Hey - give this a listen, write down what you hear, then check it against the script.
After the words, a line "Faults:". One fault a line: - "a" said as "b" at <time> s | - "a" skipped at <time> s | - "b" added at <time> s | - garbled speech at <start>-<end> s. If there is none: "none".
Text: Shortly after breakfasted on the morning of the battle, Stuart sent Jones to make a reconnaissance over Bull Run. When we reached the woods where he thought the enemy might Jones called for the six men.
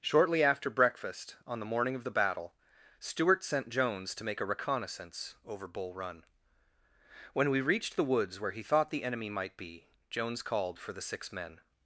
Shortly after breakfast on the morning of the battle, Stuart sent Jones to make a reconnaissance over Bull Run. When we reached the woods where he thought the enemy might be, Jones called for the six men.
Faults:
- "breakfasted" said as "breakfast" at 0.7 s
- "be" added at 9.6 s